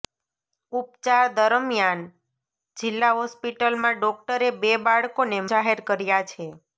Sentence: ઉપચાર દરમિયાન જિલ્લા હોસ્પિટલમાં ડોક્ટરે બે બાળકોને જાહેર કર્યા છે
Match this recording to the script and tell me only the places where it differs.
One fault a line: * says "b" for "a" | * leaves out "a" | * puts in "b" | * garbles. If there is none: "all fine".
all fine